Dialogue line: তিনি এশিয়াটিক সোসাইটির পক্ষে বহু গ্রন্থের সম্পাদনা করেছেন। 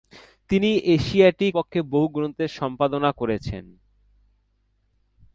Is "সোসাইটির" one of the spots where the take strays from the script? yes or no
yes